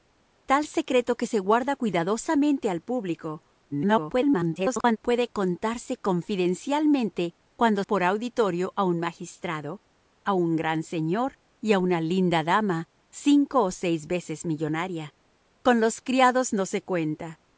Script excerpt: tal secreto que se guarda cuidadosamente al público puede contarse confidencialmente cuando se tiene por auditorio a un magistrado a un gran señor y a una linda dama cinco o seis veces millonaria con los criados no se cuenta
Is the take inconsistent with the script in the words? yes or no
yes